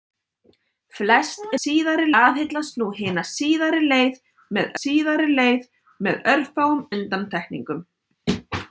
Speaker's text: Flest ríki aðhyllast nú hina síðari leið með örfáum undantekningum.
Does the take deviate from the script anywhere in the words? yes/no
yes